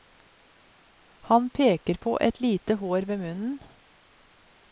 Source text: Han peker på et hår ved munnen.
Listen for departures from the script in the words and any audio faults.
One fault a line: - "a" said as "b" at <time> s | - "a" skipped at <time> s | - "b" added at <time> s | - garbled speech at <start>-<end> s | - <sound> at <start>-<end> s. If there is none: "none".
- "lite" added at 2.4 s